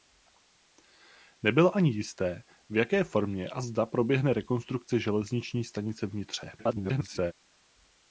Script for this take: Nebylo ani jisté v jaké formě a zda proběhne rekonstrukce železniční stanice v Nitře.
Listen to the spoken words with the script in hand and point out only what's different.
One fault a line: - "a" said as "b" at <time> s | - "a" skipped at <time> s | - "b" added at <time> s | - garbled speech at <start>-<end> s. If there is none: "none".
- garbled speech at 6.6-7.3 s